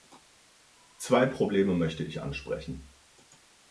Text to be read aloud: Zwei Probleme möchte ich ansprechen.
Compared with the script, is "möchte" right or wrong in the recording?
right